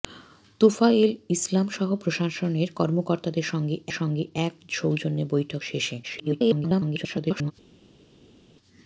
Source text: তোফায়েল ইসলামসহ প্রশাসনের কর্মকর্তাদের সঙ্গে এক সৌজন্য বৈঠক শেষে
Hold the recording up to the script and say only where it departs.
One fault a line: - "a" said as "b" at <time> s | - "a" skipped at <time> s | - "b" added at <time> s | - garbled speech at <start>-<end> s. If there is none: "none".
- "সঙ্গে" added at 3.9 s
- garbled speech at 6.0-7.5 s